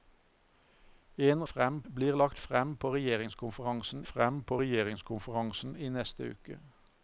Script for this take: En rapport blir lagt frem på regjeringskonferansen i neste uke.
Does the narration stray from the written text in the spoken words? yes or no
yes